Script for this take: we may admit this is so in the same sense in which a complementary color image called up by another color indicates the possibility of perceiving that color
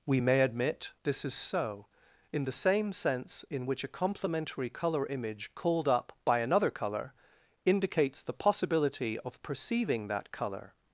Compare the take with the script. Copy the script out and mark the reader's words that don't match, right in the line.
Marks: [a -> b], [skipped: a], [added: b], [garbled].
we may admit this is so in the same sense in which a complementary color image called up by another color indicates the possibility of perceiving that color